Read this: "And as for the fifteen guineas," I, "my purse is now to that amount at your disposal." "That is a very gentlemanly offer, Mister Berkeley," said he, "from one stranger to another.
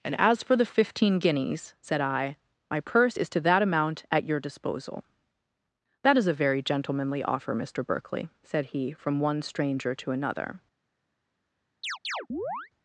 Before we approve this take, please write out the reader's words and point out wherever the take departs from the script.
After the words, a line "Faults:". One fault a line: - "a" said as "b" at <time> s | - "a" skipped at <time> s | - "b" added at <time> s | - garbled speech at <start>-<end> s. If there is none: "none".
"And as for the fifteen guineas," said I, "my purse is to that amount at your disposal." "That is a very gentlemanly offer, Mister Berkeley," said he, "from one stranger to another.
Faults:
- "said" added at 1.8 s
- "now" skipped at 3.3 s